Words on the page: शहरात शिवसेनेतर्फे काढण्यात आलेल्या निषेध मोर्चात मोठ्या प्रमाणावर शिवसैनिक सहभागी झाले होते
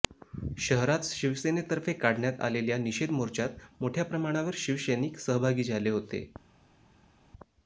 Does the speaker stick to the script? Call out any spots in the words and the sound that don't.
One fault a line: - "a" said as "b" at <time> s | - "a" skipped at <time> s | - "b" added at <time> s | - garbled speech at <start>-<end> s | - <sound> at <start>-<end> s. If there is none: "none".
none